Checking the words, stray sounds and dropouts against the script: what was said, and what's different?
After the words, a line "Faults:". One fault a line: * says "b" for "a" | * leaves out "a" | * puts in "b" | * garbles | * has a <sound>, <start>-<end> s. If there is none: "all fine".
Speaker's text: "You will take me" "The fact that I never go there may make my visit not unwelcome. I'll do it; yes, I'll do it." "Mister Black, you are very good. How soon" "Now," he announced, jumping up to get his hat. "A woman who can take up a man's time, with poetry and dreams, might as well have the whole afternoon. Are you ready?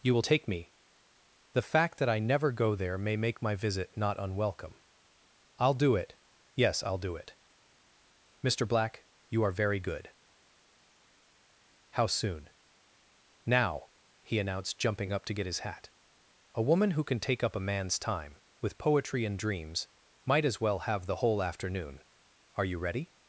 "You will take me" "The fact that I never go there may make my visit not unwelcome. I'll do it; yes, I'll do it." "Mister Black, you are very good. How soon" "Now," he announced, jumping up to get his hat. "A woman who can take up a man's time, with poetry and dreams, might as well have the whole afternoon. Are you ready?
Faults:
all fine